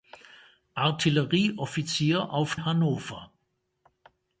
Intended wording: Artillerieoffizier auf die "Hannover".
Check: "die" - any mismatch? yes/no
yes